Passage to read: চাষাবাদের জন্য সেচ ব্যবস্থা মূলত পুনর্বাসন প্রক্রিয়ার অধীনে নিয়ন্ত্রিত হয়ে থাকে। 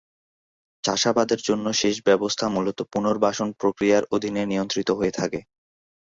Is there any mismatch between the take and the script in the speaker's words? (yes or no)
no